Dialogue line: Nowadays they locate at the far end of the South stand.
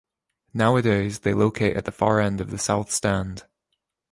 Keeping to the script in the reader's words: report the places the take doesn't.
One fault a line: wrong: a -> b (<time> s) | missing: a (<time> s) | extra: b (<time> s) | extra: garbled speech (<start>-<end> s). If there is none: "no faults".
no faults